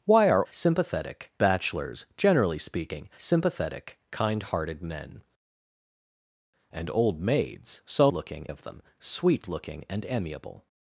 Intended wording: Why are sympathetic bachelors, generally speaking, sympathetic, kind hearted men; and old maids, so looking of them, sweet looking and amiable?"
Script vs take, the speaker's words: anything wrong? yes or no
no